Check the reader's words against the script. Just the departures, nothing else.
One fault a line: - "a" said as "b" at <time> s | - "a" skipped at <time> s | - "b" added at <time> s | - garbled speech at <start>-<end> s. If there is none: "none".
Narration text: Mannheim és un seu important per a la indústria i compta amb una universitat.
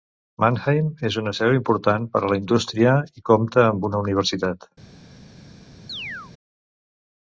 - "un" said as "una" at 1.2 s